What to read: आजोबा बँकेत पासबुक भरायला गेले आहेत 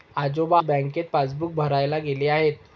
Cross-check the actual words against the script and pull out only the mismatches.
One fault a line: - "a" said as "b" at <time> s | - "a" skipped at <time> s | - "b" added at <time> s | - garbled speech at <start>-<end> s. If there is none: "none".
none